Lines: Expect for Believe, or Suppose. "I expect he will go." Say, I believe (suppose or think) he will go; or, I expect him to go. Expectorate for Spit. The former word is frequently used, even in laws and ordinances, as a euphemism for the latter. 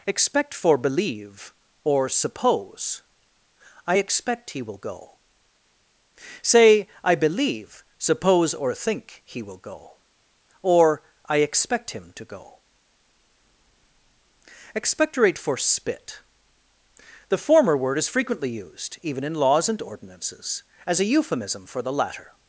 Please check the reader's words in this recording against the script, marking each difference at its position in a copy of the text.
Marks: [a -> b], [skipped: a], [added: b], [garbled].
Expect for Believe, or Suppose. "I expect he will go." Say, I believe (suppose or think) he will go; or, I expect him to go. Expectorate for Spit. The former word is frequently used, even in laws and ordinances, as a euphemism for the latter.